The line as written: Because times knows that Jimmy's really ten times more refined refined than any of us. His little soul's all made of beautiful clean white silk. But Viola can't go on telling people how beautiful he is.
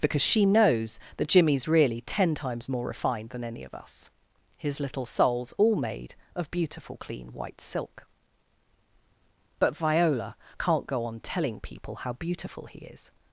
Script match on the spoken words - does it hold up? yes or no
no